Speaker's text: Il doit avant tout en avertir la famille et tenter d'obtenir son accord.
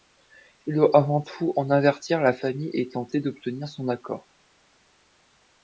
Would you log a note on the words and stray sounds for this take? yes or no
no